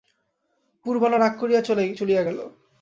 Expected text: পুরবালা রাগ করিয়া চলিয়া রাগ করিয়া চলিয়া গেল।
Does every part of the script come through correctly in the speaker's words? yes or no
no